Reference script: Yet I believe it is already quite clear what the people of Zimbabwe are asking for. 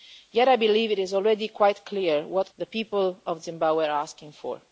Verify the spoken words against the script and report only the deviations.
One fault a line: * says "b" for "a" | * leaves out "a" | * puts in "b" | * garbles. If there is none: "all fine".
all fine